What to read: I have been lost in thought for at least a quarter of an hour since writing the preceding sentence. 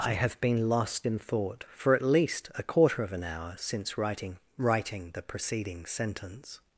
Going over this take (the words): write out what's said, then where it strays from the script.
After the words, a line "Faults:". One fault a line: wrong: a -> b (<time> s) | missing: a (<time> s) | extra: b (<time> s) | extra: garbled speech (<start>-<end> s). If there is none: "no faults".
I have been lost in thought for at least a quarter of an hour since writing writing the preceding sentence.
Faults:
extra: writing (4.6 s)